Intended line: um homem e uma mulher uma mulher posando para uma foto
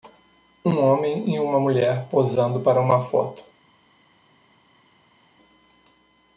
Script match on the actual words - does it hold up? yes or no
no